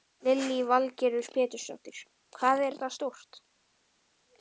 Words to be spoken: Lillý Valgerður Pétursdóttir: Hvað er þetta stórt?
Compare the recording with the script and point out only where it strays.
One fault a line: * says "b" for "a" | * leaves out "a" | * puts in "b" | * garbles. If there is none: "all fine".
all fine